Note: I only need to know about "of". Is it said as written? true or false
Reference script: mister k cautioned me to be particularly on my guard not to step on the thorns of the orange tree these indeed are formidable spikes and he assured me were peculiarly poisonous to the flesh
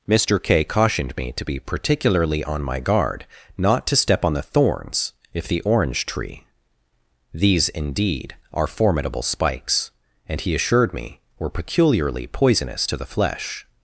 false